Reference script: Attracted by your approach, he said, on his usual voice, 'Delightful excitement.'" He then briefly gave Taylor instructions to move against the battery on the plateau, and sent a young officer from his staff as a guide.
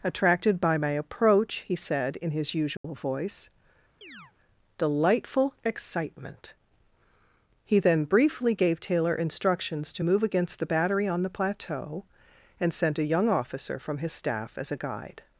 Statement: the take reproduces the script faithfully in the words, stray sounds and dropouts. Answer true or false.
false